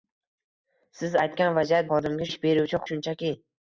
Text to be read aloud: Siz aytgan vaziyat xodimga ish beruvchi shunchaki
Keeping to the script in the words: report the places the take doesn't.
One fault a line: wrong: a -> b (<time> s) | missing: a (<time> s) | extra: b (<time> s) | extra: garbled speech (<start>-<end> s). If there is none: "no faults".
no faults